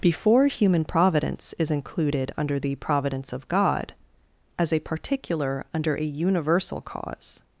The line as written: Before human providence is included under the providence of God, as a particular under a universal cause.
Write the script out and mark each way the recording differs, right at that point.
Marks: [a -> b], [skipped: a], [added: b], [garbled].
Before human providence is included under the providence of God, as a particular under a universal cause.